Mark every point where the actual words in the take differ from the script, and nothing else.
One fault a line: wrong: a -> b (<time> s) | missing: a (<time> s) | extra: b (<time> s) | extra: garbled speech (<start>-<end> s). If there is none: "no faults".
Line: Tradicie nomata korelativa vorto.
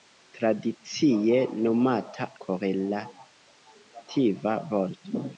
no faults